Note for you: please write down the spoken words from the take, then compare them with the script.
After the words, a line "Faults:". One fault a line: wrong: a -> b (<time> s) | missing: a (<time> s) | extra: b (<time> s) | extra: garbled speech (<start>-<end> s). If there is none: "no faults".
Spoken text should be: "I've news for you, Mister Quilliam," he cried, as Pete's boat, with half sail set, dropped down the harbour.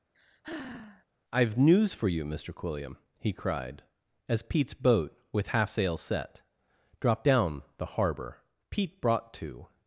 "I've news for you, Mister Quilliam," he cried, as Pete's boat, with half sail set, dropped down the harbour. Pete brought to
Faults:
extra: Pete brought to (8.7 s)